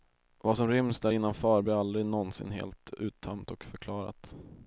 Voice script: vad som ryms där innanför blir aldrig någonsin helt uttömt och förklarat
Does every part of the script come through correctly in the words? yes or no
yes